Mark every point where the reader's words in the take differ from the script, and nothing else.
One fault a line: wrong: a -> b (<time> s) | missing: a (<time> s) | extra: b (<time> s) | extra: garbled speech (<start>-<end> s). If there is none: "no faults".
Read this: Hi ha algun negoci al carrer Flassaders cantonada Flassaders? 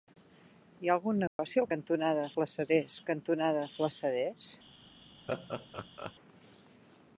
wrong: carrer -> cantonada (1.7 s)